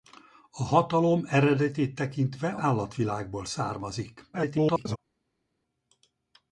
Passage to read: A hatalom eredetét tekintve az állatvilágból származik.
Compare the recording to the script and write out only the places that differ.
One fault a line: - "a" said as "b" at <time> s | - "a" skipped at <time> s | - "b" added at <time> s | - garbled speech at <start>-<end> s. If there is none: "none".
- "az" skipped at 2.5 s
- garbled speech at 4.3-5.0 s